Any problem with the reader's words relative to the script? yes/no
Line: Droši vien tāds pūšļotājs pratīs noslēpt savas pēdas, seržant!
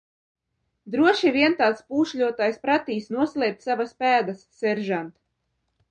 no